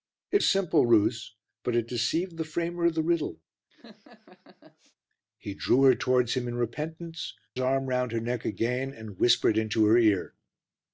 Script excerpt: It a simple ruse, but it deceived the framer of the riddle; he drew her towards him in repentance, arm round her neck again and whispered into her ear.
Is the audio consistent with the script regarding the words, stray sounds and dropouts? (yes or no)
no